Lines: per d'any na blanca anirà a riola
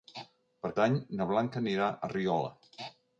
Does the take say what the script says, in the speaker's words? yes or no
yes